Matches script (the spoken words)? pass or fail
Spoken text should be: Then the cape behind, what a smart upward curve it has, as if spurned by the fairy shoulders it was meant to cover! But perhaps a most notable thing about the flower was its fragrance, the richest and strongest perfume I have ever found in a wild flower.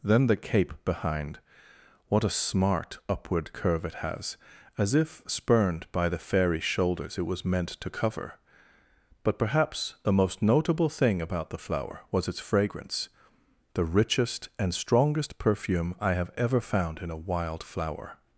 fail